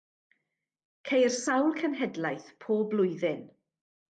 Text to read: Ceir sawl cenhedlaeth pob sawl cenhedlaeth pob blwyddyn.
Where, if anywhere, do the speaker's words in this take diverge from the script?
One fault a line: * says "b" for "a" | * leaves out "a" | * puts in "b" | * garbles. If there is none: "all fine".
* leaves out "sawl cenhedlaeth pob"